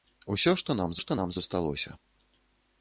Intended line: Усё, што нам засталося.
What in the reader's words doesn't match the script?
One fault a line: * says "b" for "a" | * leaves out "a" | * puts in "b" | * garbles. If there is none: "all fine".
* puts in "што нам"